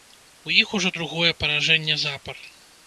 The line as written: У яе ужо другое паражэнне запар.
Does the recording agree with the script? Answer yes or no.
no